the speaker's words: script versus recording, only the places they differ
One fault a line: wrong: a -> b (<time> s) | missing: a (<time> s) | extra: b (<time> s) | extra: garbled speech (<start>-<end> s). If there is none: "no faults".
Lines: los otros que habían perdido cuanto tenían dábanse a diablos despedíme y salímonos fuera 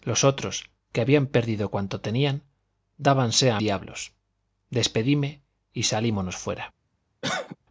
no faults